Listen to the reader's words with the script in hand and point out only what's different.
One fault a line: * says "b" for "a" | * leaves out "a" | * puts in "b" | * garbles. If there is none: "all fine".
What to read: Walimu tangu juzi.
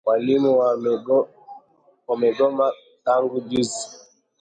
* puts in "wamegoma"